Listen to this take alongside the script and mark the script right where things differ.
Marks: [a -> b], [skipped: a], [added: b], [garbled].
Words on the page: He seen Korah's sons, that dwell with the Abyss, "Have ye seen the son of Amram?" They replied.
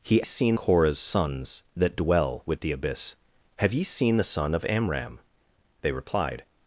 He seen Korah's sons, that dwell with the Abyss, "Have ye seen the son of Amram?" They replied.